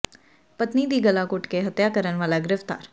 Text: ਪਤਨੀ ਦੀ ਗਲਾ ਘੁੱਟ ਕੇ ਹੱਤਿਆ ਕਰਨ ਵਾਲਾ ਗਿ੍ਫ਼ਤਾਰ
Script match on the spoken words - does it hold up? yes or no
yes